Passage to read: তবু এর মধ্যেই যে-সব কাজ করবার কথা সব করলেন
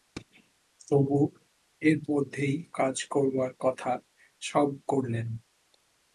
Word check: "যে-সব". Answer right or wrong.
wrong